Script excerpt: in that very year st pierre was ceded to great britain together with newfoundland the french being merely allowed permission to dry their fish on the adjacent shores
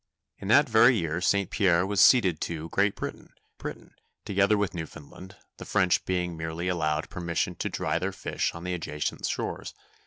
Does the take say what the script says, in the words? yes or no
no